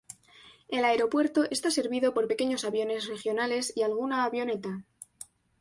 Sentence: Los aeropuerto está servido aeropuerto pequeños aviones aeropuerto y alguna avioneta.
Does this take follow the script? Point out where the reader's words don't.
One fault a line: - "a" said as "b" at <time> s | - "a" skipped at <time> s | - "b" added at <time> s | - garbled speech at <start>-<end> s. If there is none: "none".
- "Los" said as "El" at 0.7 s
- "aeropuerto" said as "por" at 2.1 s
- "aeropuerto" said as "regionales" at 3.1 s